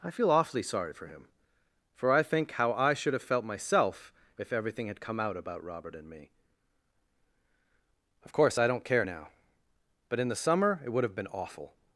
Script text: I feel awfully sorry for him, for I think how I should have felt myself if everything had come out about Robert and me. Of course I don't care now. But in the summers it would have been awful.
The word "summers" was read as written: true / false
false